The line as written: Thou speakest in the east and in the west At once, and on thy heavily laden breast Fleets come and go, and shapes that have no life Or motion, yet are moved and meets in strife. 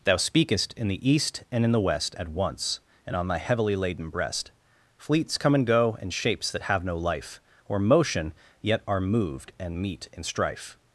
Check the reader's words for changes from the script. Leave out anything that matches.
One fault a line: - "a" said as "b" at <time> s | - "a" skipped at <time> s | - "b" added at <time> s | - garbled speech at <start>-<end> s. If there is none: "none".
- "meets" said as "meet" at 9.8 s